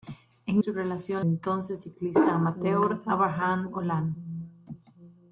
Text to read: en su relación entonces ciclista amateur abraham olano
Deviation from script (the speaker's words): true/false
false